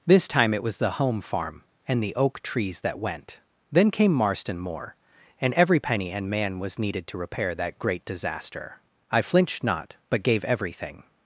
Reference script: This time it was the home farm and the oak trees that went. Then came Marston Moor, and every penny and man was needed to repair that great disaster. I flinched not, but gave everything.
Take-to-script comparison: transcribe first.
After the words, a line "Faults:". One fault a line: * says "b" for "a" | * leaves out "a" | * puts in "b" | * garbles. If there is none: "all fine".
This time it was the home farm and the oak trees that went. Then came Marston Moor, and every penny and man was needed to repair that great disaster. I flinched not, but gave everything.
Faults:
all fine